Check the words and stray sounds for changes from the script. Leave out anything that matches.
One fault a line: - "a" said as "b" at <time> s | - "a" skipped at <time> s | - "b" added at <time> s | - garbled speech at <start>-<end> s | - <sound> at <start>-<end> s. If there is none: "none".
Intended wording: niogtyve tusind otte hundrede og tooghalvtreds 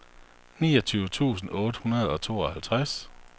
none